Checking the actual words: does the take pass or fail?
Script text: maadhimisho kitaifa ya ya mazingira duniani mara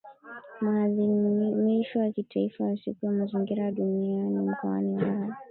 fail